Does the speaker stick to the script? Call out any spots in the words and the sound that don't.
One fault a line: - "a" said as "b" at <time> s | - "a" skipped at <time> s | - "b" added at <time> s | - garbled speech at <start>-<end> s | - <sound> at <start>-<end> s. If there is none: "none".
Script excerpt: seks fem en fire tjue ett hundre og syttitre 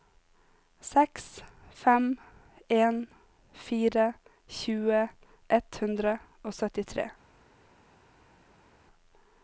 none